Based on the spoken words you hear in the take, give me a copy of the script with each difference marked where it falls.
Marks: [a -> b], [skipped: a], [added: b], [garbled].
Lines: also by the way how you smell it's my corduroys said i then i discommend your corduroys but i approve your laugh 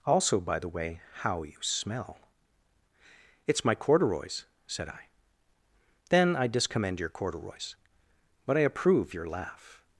also by the way how you smell it's my corduroys said i then i discommend your corduroys but i approve your laugh